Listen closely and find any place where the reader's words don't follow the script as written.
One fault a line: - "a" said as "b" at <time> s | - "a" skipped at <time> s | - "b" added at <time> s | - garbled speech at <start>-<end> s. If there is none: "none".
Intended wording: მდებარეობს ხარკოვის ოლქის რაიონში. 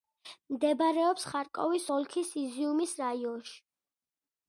- "იზიუმის" added at 2.4 s